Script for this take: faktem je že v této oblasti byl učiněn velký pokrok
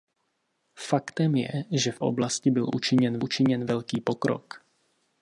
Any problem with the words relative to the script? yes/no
yes